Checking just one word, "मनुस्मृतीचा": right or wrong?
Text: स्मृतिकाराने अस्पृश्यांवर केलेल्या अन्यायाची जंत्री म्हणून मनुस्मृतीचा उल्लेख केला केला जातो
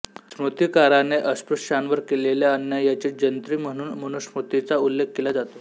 right